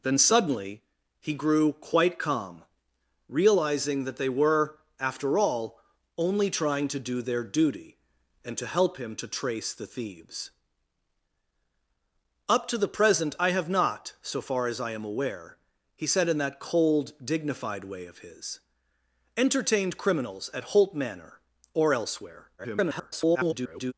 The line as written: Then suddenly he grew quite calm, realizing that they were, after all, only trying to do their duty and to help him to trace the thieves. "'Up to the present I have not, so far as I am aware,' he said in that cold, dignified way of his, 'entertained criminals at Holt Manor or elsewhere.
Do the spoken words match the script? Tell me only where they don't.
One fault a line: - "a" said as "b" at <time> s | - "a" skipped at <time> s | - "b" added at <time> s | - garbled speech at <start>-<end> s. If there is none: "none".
- garbled speech at 22.6-23.9 s